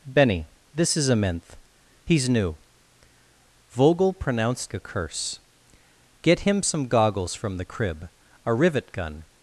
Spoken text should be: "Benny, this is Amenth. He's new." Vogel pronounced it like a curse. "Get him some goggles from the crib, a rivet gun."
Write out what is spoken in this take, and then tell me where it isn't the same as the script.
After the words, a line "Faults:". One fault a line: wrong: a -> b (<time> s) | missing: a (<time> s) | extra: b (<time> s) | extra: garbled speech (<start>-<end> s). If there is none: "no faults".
"Benny, this is Amenth. He's new." Vogel pronounced a curse. "Get him some goggles from the crib, a rivet gun."
Faults:
missing: it like (4.7 s)